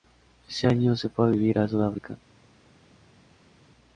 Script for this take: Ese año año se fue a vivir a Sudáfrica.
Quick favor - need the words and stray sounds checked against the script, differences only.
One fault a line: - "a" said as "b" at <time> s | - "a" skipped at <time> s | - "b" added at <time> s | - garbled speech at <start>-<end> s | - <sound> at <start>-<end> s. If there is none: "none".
- "año" skipped at 1.0 s